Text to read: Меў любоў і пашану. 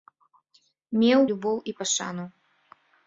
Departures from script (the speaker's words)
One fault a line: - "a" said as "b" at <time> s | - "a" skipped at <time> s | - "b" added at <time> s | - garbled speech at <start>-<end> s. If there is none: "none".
none